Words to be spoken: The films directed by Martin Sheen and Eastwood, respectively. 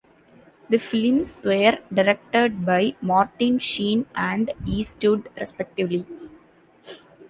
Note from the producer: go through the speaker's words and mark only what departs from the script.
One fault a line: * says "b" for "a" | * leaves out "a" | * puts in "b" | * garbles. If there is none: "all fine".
* puts in "were"